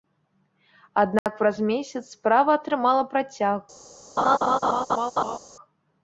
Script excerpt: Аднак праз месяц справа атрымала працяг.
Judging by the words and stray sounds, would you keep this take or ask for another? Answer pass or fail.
fail